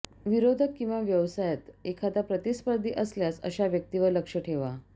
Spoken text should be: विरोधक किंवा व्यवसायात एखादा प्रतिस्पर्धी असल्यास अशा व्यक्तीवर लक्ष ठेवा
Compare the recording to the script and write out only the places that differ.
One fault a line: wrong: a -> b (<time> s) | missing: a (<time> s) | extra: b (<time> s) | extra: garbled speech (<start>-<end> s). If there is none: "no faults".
no faults